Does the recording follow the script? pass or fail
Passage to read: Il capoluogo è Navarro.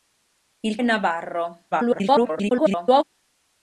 fail